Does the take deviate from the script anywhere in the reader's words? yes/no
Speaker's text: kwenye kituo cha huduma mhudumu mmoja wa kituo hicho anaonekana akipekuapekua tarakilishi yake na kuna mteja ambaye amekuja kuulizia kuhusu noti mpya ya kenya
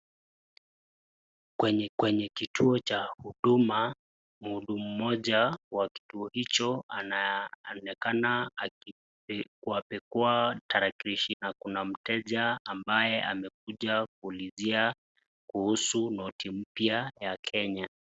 yes